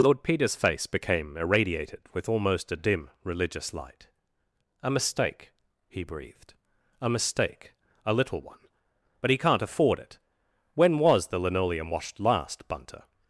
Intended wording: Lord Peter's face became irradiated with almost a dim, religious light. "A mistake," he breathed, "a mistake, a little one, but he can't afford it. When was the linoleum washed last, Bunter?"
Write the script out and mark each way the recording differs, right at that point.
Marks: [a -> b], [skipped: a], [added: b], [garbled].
Lord Peter's face became irradiated with almost a dim, religious light. "A mistake," he breathed, "a mistake, a little one, but he can't afford it. When was the linoleum washed last, Bunter?"